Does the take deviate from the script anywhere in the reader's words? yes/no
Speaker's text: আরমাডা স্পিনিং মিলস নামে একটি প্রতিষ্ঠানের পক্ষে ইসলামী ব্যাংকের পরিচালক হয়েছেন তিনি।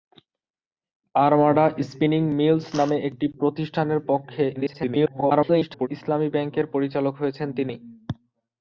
yes